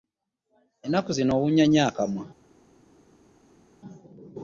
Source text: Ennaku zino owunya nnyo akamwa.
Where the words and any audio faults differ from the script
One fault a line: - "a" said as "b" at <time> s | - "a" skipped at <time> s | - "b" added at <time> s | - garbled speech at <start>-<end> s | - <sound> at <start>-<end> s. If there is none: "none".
none